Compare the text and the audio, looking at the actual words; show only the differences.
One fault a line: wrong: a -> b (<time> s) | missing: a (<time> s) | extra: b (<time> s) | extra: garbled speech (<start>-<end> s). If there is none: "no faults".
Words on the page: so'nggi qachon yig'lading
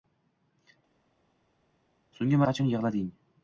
no faults